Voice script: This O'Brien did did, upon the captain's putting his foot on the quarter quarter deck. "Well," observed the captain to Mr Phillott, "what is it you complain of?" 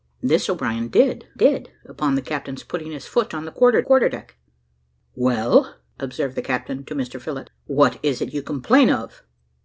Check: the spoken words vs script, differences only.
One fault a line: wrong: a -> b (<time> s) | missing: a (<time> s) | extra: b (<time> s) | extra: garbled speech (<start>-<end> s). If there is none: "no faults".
no faults